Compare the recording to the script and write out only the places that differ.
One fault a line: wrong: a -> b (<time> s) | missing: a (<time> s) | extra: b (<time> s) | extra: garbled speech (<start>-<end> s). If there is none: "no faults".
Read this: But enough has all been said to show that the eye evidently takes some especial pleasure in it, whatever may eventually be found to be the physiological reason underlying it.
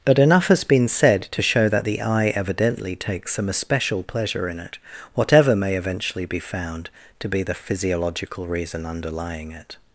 missing: all (0.6 s)